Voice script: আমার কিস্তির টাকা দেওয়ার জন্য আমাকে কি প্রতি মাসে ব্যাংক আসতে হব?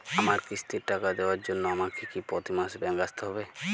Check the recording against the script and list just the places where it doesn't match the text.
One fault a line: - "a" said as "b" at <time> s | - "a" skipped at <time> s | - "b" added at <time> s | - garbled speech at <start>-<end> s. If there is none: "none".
none